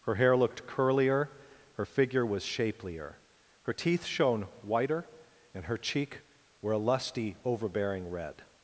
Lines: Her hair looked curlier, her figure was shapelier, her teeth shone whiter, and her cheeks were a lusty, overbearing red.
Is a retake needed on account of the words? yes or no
yes